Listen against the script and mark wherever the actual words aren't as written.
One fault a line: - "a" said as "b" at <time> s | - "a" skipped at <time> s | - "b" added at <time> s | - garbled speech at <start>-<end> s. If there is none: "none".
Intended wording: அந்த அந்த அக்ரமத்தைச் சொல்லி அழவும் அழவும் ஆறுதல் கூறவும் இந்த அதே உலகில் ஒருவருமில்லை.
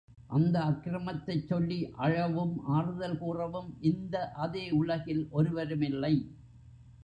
- "அந்த" skipped at 0.6 s
- "அழவும்" skipped at 2.5 s